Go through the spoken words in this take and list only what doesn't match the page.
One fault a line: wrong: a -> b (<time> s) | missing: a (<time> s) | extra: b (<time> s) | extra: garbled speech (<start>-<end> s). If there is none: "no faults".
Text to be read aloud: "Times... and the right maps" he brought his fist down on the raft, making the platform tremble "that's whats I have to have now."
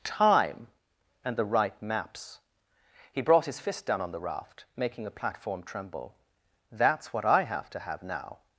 wrong: Times -> Time (0.0 s)
wrong: whats -> what (7.1 s)